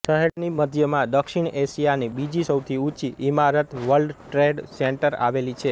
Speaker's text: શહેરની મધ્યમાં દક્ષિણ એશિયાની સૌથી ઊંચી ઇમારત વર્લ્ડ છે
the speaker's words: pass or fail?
fail